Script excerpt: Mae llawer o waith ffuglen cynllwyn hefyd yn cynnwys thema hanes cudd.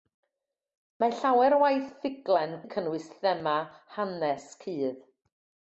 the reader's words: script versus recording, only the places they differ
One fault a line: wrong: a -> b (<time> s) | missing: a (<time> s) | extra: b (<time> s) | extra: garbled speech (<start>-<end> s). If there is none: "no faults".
missing: cynllwyn hefyd (2.5 s)